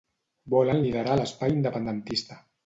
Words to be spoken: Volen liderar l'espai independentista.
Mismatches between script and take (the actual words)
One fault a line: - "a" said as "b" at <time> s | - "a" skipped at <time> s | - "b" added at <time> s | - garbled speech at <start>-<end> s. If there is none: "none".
none